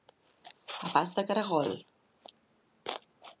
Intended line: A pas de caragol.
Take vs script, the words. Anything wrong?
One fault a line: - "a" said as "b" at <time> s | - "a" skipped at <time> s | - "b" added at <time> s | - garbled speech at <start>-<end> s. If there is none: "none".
none